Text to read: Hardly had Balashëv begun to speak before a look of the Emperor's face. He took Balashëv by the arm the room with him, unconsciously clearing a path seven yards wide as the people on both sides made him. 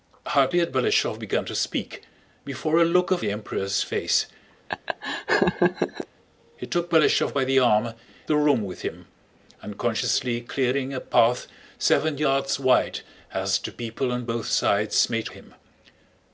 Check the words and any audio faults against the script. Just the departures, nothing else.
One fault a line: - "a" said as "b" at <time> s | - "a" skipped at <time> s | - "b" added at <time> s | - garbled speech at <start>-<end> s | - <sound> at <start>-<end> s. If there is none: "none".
- laugh at 4.7-6.1 s